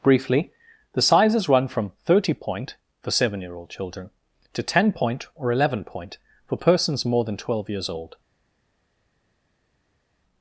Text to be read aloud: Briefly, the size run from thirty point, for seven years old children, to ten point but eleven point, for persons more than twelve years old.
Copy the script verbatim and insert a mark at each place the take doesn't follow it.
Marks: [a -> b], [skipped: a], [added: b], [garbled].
Briefly, the [size -> sizes] run from thirty point, for seven [years -> year] old children, to ten point [but -> or] eleven point, for persons more than twelve years old.